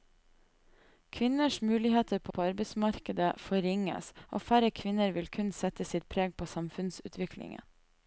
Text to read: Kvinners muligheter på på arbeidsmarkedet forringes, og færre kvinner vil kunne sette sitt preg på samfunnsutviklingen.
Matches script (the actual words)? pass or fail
pass